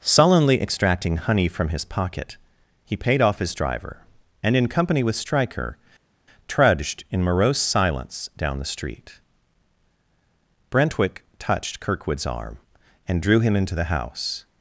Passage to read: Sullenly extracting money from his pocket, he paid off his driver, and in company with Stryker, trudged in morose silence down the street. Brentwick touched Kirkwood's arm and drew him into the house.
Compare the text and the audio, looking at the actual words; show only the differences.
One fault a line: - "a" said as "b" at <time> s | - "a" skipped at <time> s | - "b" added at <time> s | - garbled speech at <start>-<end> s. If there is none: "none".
- "money" said as "honey" at 1.2 s